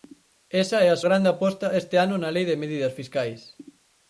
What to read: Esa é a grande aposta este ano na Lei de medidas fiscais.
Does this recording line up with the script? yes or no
yes